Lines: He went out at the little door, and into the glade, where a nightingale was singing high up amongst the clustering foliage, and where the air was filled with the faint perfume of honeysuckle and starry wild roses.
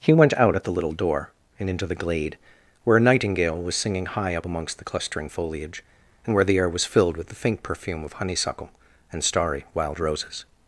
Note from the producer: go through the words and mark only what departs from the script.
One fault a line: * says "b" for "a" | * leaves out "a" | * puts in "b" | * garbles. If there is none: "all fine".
all fine